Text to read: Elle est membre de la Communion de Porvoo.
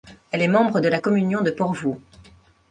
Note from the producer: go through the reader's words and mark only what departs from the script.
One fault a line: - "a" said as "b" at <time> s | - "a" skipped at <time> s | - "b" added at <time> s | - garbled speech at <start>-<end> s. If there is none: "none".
none